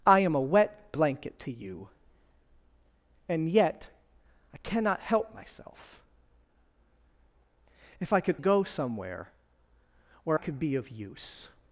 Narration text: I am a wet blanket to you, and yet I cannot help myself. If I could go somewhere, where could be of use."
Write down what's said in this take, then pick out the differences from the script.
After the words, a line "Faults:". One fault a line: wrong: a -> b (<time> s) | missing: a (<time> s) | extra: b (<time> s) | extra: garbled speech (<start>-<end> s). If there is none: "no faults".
I am a wet blanket to you, and yet I cannot help myself. If I could go somewhere, where could be of use."
Faults:
no faults